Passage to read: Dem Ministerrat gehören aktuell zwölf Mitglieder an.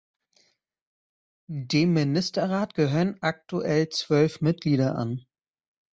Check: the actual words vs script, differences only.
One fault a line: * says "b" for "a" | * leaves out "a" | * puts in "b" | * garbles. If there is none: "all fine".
all fine